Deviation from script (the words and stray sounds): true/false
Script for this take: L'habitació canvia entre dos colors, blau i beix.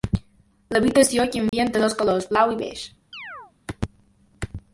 true